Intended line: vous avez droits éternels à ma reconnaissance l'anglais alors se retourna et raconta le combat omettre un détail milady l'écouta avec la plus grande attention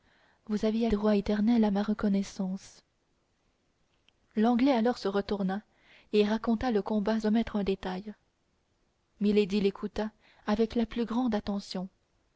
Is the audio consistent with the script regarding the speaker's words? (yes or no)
yes